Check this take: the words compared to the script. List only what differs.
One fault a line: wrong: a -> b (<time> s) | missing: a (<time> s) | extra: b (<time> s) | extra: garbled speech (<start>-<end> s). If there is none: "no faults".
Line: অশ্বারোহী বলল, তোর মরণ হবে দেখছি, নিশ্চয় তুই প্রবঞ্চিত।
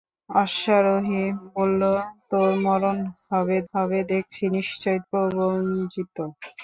extra: হবে (3.7 s)
missing: তুই (5.0 s)